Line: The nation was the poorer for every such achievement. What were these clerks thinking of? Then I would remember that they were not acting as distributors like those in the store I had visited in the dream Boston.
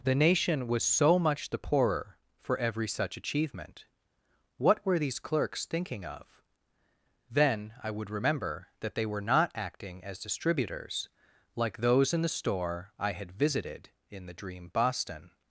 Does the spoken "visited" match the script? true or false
true